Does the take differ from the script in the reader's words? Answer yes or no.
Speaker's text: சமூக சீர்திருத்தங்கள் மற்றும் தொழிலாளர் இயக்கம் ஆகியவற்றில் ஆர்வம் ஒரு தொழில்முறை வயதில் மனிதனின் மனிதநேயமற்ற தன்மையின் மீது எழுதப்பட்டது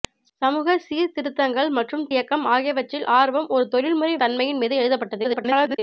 yes